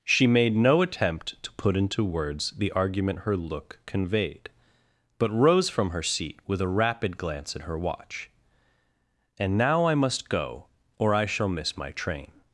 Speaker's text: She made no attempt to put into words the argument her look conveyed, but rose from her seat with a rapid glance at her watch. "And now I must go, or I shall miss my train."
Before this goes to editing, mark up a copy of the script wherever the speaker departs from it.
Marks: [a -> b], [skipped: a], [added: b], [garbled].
She made no attempt to put into words the argument her look conveyed, but rose from her seat with a rapid glance at her watch. "And now I must go, or I shall miss my train."